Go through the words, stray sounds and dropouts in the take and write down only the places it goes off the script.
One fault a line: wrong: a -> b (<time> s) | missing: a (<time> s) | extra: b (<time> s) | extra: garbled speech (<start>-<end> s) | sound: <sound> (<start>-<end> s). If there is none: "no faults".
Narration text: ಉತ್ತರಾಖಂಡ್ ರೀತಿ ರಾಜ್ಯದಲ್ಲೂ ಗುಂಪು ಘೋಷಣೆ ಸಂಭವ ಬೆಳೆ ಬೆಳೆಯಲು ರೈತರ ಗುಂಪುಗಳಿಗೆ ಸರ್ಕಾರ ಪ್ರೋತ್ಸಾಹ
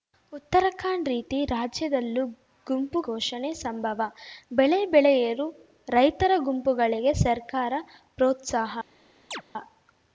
sound: chirp (9.3-9.4 s)